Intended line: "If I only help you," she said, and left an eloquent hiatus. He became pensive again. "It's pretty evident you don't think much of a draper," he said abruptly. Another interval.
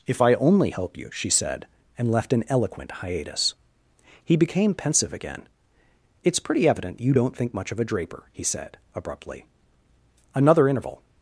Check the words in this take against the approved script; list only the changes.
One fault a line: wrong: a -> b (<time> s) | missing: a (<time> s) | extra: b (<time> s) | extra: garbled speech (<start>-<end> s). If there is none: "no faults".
no faults